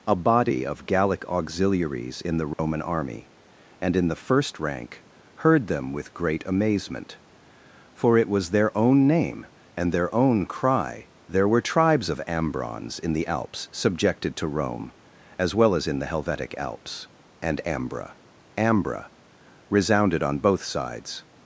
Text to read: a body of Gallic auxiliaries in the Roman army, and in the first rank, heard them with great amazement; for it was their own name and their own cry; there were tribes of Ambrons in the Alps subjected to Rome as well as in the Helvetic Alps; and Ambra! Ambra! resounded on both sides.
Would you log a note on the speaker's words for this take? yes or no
no